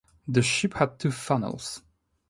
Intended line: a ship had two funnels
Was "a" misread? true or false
true